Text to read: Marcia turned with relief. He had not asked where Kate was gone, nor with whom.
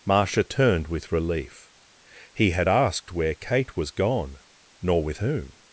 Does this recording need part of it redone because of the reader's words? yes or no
yes